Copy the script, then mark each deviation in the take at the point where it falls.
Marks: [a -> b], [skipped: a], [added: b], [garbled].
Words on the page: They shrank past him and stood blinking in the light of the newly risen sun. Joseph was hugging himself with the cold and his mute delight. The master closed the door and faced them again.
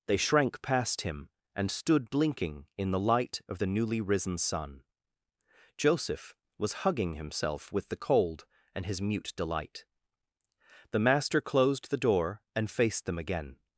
They shrank past him and stood blinking in the light of the newly risen sun. Joseph was hugging himself with the cold and his mute delight. The master closed the door and faced them again.